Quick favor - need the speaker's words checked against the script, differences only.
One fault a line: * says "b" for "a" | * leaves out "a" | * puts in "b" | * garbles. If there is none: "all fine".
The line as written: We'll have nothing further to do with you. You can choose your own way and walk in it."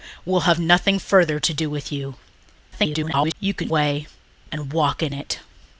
* garbles
* leaves out "choose your own"